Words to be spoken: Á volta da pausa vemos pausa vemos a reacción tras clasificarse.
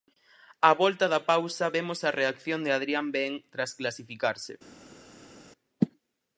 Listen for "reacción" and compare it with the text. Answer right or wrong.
wrong